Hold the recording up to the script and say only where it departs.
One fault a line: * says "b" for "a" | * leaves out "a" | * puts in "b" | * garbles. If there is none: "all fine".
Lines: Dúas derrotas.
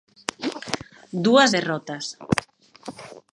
all fine